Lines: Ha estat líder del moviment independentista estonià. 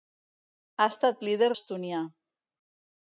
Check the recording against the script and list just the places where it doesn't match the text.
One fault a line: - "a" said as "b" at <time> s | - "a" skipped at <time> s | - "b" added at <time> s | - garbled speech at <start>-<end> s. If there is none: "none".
- "del moviment independentista" skipped at 1.5 s